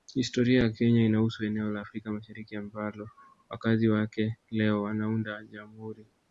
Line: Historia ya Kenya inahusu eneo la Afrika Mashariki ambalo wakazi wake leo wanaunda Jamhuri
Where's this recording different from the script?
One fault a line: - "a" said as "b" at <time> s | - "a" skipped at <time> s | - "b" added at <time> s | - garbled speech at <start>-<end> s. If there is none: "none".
none